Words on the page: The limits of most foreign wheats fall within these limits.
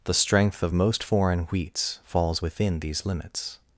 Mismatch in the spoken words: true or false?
true